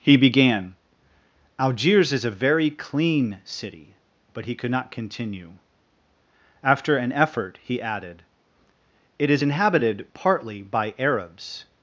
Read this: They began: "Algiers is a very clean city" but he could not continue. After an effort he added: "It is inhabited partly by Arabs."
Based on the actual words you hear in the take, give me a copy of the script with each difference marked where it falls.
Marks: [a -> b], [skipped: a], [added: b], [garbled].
[They -> He] began: "Algiers is a very clean city" but he could not continue. After an effort he added: "It is inhabited partly by Arabs."